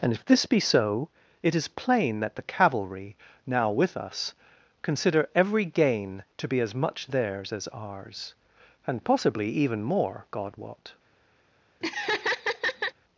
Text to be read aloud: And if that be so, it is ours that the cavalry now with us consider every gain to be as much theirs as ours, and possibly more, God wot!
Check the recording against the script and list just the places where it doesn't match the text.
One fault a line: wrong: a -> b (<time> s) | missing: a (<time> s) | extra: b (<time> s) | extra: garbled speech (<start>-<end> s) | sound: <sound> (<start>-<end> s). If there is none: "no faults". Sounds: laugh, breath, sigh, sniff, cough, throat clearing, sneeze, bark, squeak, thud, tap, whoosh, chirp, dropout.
wrong: that -> this (0.2 s)
wrong: ours -> plain (1.7 s)
extra: even (9.5 s)
sound: laugh (11.8-12.9 s)